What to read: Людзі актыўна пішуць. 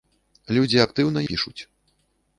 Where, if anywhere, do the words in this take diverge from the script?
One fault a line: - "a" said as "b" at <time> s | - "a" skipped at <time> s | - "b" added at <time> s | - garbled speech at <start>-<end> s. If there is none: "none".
none